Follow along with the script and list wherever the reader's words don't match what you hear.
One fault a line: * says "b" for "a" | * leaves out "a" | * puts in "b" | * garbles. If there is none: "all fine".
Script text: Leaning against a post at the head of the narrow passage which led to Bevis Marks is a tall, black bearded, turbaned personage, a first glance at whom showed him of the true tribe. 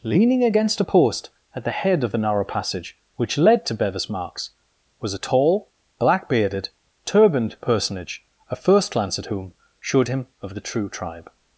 * says "was" for "is"